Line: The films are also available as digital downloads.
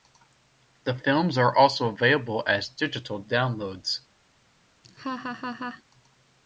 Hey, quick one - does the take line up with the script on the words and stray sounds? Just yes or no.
no